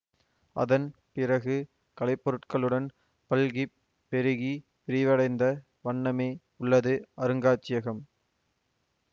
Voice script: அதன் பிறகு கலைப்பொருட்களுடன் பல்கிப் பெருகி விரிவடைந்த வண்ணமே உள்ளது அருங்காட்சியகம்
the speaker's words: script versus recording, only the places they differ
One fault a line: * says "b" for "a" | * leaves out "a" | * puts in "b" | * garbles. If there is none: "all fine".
all fine